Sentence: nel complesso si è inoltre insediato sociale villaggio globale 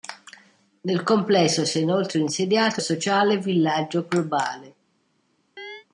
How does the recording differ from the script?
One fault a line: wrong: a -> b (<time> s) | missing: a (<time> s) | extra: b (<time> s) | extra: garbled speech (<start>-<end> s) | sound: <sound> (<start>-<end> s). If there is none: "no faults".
sound: chirp (5.6-5.9 s)